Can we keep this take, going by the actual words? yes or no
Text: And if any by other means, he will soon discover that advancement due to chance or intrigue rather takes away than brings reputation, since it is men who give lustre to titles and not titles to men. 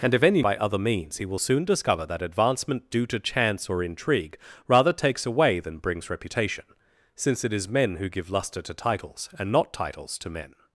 yes